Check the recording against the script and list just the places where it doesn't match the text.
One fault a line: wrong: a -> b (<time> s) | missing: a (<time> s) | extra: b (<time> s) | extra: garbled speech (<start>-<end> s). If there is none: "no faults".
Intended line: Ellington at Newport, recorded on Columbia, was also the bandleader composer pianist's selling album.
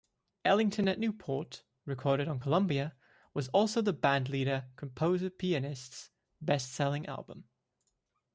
extra: best (6.4 s)